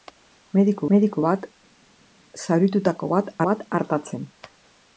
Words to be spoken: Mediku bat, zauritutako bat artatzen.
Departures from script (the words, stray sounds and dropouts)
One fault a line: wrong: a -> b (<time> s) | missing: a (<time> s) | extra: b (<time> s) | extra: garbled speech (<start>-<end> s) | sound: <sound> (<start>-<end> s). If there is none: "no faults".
extra: mediku (0.9 s)
extra: bat (3.5 s)